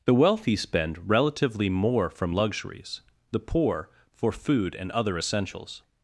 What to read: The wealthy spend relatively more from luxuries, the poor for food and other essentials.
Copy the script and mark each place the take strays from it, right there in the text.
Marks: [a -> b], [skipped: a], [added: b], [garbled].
The wealthy spend relatively more from luxuries, the poor for food and other essentials.